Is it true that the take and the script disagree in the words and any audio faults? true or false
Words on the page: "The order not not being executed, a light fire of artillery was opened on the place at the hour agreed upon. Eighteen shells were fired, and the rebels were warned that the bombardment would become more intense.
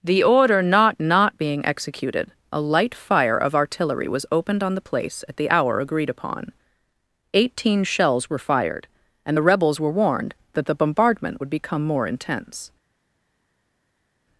false